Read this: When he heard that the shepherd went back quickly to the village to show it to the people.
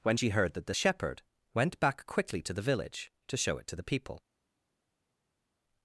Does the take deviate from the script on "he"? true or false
true